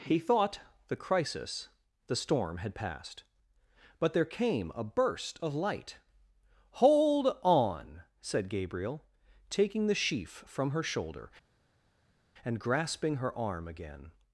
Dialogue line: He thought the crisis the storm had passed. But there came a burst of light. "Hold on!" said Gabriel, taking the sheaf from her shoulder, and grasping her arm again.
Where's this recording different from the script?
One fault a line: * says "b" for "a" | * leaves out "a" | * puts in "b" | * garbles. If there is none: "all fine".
all fine